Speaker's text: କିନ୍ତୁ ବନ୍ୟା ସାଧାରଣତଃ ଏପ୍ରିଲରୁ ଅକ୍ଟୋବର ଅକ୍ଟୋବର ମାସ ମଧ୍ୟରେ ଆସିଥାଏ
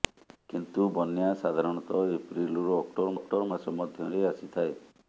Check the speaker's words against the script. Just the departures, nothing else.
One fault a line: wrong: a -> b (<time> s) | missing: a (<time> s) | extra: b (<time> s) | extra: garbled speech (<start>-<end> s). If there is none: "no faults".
no faults